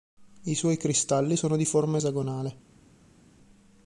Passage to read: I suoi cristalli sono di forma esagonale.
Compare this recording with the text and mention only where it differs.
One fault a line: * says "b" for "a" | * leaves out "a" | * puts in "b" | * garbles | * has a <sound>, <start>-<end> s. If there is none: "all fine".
all fine